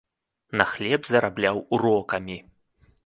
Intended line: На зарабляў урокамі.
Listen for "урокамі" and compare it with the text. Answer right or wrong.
right